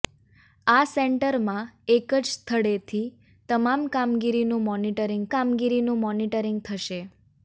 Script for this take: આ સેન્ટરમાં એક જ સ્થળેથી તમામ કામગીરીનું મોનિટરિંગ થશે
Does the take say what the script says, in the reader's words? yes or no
no